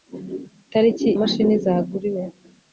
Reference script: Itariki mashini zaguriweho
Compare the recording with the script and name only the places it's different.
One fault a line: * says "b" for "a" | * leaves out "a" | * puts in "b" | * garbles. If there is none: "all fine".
all fine